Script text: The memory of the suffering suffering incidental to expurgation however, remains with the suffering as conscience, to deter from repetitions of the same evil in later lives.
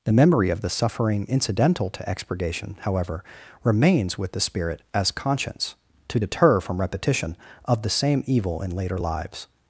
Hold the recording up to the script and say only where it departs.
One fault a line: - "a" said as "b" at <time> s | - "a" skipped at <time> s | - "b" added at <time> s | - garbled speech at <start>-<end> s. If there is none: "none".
- "suffering" skipped at 1.3 s
- "suffering" said as "spirit" at 4.4 s
- "repetitions" said as "repetition" at 6.8 s